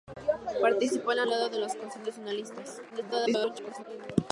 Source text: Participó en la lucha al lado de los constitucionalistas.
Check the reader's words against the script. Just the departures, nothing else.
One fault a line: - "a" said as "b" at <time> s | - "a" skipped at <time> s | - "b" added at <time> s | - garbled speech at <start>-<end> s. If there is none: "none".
- "lucha" skipped at 1.3 s
- garbled speech at 2.9-3.8 s